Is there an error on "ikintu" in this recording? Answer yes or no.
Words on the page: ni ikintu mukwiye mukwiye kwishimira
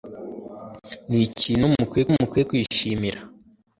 no